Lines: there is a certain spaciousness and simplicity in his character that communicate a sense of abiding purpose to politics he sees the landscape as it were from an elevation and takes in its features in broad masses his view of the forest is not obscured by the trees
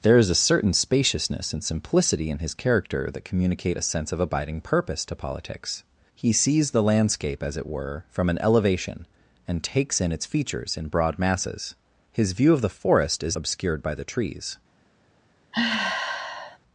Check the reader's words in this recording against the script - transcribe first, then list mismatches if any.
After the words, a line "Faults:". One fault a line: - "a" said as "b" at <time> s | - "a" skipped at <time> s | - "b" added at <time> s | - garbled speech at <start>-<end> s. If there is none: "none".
there is a certain spaciousness and simplicity in his character that communicate a sense of abiding purpose to politics he sees the landscape as it were from an elevation and takes in its features in broad masses his view of the forest is obscured by the trees
Faults:
- "not" skipped at 13.4 s